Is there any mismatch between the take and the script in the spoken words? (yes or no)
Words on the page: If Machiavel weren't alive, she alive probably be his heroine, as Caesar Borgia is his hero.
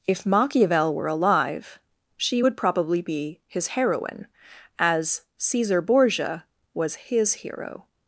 yes